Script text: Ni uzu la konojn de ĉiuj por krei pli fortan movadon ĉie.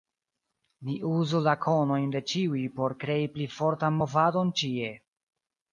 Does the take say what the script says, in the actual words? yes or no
yes